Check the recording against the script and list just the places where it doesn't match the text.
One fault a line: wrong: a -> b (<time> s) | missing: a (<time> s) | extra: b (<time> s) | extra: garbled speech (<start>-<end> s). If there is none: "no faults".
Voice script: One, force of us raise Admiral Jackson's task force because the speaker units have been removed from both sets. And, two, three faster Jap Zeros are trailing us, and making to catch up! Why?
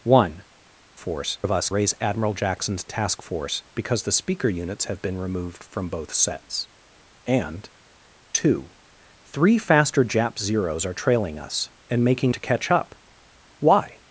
no faults